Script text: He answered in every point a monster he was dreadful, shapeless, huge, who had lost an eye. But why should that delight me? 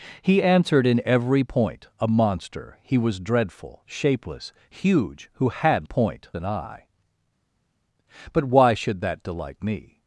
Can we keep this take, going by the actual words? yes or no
no